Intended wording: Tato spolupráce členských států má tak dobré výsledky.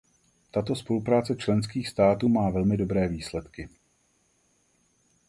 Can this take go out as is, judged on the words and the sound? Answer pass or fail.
fail